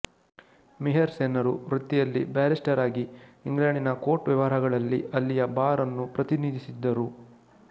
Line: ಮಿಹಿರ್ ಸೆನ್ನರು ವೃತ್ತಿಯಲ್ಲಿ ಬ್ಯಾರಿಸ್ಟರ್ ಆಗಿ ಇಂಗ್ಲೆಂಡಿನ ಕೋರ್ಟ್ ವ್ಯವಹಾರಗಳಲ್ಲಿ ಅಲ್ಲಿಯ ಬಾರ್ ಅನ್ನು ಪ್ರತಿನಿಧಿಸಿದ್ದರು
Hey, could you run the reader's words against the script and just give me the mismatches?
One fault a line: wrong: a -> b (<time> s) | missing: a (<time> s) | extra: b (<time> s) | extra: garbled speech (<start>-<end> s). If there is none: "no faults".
no faults